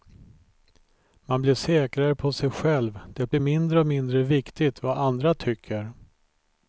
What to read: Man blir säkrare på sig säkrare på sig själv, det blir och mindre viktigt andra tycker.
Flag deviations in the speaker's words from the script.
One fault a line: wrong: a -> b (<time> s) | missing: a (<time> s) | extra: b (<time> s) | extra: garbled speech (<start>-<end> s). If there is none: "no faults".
missing: säkrare på sig (2.5 s)
extra: mindre (3.4 s)
extra: vad (4.8 s)